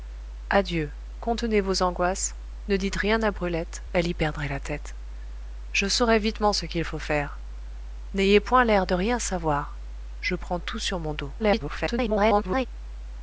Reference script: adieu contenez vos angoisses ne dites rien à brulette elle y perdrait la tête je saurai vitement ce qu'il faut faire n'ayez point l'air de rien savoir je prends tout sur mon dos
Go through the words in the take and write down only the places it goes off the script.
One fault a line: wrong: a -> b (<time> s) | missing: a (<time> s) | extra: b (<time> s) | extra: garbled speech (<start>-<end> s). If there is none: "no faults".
extra: garbled speech (11.4-12.7 s)